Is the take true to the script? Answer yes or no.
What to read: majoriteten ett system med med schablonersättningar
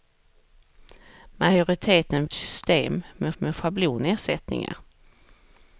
yes